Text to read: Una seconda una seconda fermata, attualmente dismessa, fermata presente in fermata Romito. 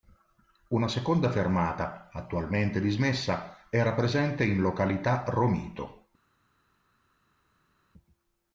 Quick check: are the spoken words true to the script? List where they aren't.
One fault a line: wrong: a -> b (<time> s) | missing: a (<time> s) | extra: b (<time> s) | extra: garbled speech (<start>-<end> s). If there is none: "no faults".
missing: una seconda (1.3 s)
wrong: fermata -> era (3.7 s)
wrong: fermata -> località (4.6 s)